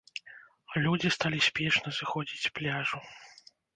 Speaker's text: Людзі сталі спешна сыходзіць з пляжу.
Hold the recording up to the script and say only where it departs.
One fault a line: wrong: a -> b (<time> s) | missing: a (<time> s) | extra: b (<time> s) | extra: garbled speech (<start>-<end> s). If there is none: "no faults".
no faults